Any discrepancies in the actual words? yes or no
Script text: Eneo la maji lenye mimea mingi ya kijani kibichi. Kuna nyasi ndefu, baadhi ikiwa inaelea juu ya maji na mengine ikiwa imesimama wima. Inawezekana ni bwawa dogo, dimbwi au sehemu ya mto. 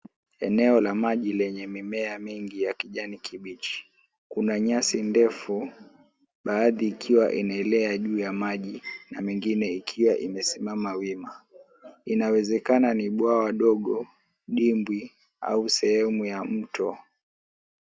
no